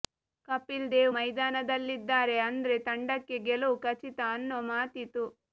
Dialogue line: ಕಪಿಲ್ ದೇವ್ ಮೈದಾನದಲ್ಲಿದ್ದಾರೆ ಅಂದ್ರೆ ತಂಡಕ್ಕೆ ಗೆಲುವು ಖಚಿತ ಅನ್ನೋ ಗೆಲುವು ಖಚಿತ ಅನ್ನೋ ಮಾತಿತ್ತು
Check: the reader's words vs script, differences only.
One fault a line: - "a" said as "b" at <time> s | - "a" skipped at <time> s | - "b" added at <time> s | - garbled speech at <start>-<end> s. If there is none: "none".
- "ಗೆಲುವು ಖಚಿತ ಅನ್ನೋ" skipped at 4.6 s